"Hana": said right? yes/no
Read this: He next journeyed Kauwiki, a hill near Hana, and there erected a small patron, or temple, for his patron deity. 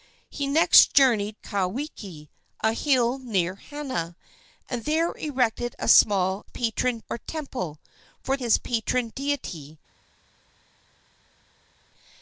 yes